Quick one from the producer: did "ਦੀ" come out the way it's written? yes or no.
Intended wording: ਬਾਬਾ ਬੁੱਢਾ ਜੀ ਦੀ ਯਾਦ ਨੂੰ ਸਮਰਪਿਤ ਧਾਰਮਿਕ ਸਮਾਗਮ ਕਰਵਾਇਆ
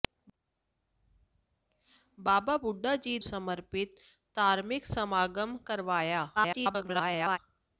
no